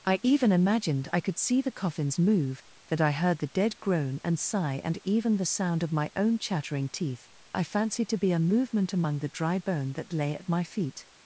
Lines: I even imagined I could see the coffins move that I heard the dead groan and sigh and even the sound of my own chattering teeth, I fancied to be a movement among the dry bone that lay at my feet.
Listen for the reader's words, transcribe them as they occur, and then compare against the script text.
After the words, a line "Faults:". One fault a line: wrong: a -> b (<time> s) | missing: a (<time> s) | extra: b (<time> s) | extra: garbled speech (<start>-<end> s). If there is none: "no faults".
I even imagined I could see the coffins move that I heard the dead groan and sigh and even the sound of my own chattering teeth, I fancied to be a movement among the dry bone that lay at my feet.
Faults:
no faults